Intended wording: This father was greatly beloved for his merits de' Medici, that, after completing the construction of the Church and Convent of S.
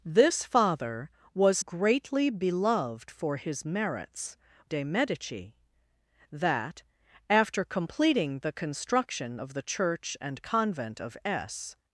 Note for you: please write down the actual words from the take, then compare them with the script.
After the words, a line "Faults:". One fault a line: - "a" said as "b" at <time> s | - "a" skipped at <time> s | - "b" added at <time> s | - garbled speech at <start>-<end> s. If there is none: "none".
This father was greatly beloved for his merits de' Medici, that, after completing the construction of the Church and Convent of S.
Faults:
none